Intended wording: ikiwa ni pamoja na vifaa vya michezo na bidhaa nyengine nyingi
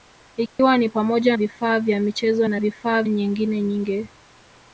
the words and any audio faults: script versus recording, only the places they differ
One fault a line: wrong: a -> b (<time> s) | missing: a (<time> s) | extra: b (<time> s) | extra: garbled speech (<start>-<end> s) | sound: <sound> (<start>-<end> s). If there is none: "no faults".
sound: dropout (0.5-0.6 s)
missing: na (1.4 s)
wrong: bidhaa -> vifaa (2.6 s)